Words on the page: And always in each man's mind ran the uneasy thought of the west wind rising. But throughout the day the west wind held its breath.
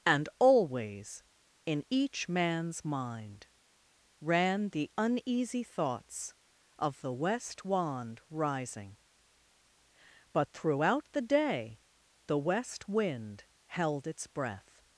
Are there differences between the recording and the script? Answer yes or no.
yes